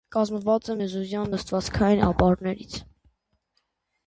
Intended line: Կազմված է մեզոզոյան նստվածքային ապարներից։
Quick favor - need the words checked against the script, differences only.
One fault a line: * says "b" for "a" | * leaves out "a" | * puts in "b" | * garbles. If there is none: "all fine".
all fine